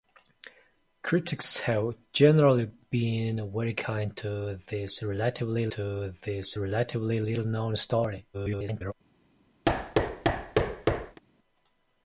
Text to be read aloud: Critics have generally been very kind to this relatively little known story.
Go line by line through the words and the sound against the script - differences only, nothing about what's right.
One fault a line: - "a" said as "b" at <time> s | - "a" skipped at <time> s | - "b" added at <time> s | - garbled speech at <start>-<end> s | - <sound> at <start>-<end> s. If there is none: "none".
- "to this relatively" added at 5.7 s
- garbled speech at 8.3-8.9 s
- thud at 9.6-11.2 s